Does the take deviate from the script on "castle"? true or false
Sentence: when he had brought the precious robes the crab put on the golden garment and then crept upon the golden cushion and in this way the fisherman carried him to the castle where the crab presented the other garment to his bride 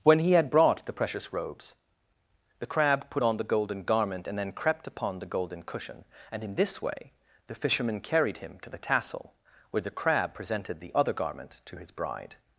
true